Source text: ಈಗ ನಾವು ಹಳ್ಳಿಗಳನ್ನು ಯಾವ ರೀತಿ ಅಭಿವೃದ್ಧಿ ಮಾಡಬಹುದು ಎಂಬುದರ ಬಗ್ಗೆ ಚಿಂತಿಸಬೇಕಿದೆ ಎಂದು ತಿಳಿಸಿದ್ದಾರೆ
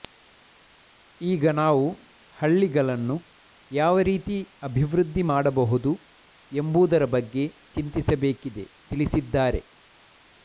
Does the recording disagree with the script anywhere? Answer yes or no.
yes